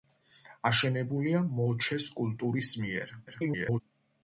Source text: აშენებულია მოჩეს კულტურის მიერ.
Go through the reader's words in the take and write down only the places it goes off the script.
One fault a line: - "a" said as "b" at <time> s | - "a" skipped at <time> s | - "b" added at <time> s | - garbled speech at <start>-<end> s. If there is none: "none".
- garbled speech at 3.3-3.8 s